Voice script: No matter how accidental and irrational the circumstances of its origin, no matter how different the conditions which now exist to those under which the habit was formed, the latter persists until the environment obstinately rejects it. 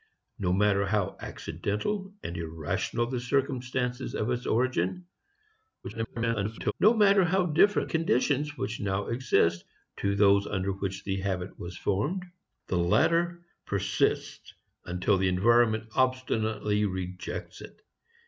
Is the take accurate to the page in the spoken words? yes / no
no